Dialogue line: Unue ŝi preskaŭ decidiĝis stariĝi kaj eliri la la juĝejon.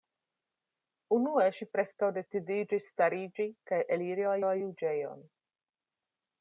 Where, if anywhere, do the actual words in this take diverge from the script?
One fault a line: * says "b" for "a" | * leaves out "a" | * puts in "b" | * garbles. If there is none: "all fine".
all fine